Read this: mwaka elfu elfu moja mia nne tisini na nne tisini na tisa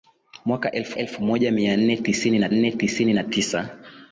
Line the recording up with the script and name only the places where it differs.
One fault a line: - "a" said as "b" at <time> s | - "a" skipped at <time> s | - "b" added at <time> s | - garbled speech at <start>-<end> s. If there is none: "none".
none